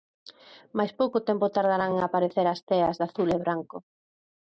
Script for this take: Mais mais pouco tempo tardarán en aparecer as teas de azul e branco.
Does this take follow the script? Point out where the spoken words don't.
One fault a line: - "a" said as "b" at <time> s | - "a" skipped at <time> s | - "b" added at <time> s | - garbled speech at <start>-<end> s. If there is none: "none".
- "mais" skipped at 0.9 s